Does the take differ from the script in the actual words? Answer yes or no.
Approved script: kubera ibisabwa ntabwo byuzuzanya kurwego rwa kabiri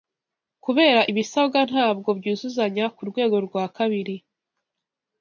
no